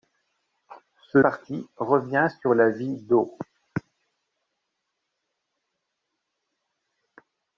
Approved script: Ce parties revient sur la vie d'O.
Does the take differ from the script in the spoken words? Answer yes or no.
no